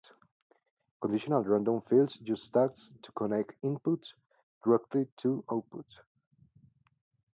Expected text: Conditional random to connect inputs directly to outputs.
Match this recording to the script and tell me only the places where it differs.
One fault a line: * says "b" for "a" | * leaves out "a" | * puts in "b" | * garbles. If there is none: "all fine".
* puts in "fields use tags"